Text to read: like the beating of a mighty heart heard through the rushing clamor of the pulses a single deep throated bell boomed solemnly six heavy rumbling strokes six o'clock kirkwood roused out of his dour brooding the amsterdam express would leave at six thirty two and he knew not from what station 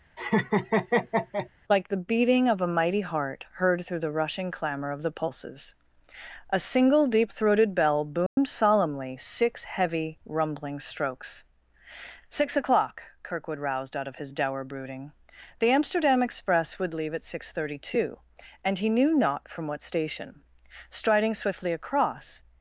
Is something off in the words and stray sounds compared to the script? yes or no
yes